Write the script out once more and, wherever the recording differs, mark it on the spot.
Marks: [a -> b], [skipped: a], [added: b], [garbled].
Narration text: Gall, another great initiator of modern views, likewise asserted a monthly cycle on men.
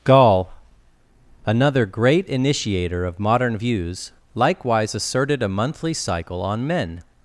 Gall, another great initiator of modern views, likewise asserted a monthly cycle on men.